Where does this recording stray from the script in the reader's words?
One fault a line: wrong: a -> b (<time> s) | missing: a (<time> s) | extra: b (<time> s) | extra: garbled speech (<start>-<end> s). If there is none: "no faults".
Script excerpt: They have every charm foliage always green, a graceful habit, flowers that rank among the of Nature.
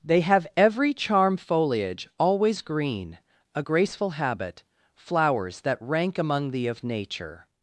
no faults